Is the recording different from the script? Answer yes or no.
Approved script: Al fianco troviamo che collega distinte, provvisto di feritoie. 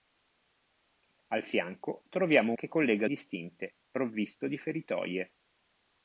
no